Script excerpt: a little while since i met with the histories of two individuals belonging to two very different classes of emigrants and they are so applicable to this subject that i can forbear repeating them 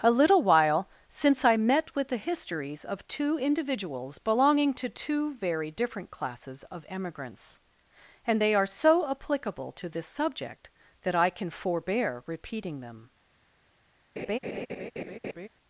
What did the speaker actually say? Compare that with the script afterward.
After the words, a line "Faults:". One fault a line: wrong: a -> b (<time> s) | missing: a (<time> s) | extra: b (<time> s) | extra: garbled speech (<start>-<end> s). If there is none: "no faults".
a little while since i met with the histories of two individuals belonging to two very different classes of emigrants and they are so applicable to this subject that i can forbear repeating them
Faults:
no faults